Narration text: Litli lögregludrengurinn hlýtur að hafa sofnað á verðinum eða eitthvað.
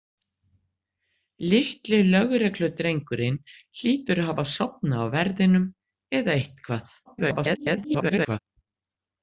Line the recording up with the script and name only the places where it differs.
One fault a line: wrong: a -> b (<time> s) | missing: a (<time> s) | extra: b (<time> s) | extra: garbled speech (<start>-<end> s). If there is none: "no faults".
extra: garbled speech (7.1-8.4 s)